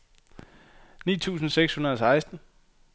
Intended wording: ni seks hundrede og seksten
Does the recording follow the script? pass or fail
fail